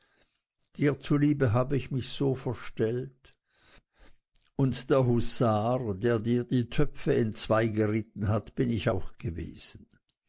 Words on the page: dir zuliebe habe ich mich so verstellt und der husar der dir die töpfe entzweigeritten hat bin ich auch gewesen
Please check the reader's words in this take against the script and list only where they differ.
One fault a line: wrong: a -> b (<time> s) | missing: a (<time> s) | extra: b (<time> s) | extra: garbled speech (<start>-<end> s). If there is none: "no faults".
no faults